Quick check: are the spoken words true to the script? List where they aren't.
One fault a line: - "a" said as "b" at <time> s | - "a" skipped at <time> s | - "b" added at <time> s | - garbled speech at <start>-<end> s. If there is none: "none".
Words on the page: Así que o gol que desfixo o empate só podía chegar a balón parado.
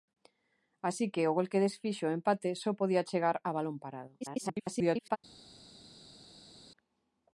- garbled speech at 4.2-5.2 s